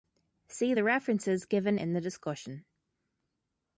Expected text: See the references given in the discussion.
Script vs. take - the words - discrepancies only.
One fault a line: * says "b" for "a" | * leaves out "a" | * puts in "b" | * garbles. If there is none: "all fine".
all fine